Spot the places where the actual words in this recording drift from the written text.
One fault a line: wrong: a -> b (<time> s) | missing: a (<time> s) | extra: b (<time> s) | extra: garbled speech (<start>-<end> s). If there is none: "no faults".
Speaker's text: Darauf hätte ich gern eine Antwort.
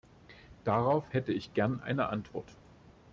no faults